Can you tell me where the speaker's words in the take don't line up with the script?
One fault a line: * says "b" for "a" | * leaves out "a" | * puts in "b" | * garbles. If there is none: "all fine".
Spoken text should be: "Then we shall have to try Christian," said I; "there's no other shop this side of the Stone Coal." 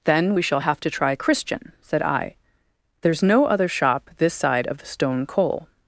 all fine